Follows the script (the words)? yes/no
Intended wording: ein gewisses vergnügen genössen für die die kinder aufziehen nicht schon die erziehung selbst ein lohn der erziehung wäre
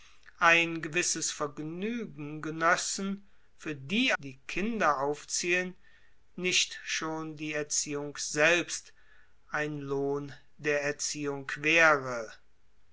yes